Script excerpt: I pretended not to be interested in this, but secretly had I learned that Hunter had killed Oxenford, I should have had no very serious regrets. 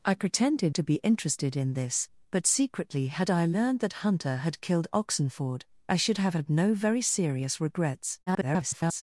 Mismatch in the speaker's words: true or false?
true